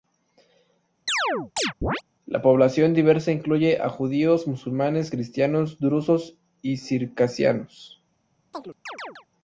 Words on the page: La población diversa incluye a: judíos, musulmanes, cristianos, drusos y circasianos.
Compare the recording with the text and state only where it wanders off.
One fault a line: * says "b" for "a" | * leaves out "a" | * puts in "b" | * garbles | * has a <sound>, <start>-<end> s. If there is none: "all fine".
* has a chirp, 1.1-2.0 s
* has a chirp, 8.5-9.3 s